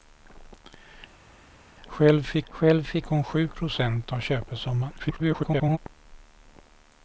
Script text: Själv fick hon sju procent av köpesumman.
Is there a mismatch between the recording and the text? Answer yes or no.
yes